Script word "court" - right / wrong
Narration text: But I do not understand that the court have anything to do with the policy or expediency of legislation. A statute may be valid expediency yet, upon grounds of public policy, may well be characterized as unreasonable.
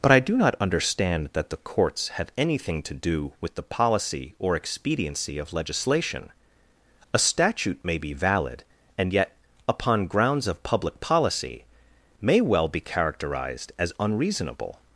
wrong